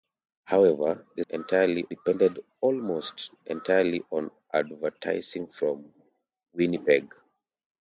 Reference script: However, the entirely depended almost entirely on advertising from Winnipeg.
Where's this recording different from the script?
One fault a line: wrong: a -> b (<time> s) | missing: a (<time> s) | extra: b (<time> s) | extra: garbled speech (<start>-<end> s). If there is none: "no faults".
no faults